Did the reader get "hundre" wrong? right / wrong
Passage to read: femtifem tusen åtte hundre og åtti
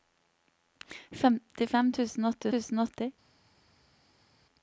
wrong